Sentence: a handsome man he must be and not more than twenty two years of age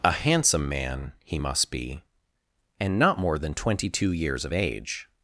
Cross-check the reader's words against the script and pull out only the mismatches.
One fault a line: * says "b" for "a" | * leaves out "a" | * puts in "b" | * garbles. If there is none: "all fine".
all fine